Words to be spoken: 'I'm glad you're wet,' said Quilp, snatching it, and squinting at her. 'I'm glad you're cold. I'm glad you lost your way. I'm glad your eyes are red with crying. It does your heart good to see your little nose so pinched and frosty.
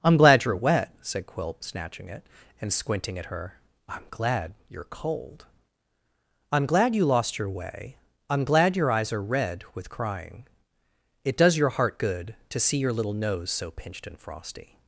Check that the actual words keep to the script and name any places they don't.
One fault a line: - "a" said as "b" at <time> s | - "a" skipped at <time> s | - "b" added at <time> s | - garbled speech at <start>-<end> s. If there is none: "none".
none